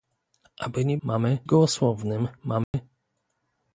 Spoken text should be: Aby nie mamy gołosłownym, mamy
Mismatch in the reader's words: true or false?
false